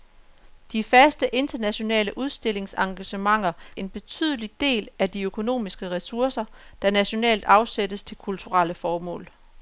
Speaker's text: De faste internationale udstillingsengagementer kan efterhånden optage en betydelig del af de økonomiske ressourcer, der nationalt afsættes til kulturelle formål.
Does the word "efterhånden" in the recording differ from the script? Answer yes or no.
yes